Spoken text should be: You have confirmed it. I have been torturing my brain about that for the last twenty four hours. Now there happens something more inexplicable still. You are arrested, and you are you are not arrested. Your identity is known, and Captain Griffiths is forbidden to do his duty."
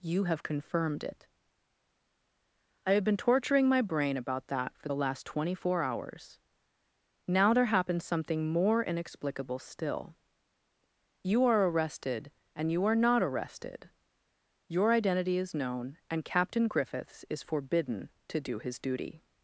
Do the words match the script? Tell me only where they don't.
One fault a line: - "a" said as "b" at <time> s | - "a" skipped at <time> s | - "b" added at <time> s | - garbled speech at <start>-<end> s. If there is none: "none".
- "you are" skipped at 13.0 s